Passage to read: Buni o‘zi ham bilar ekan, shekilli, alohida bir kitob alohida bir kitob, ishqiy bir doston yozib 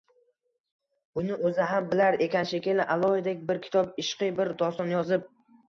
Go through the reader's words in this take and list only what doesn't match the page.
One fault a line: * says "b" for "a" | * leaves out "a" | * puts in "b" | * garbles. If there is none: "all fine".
* leaves out "alohida bir kitob"